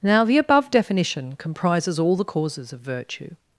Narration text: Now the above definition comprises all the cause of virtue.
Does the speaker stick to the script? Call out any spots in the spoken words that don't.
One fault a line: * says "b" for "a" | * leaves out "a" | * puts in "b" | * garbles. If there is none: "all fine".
* says "causes" for "cause"